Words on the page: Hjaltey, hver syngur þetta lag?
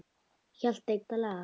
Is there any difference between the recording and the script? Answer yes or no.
yes